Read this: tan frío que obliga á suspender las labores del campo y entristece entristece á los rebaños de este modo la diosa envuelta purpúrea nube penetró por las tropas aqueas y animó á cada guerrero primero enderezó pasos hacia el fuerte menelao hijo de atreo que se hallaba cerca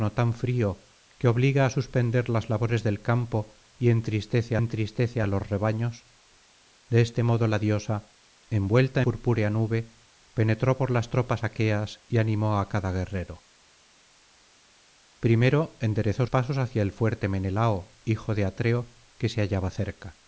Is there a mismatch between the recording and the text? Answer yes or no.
no